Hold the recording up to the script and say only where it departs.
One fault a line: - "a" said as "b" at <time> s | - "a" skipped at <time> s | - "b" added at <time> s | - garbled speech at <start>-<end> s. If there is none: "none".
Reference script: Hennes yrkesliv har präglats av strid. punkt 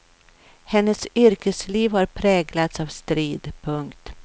none